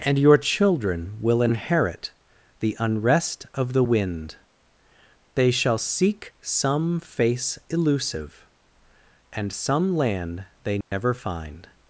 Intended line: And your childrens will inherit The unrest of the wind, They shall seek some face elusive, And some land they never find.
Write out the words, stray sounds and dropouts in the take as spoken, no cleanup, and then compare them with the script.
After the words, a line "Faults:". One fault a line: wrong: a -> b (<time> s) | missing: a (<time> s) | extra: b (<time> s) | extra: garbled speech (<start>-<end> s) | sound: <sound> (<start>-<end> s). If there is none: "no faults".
And your children will inherit The unrest of the wind, They shall seek some face elusive, And some land they never find.
Faults:
wrong: childrens -> children (0.4 s)
sound: dropout (10.8-10.9 s)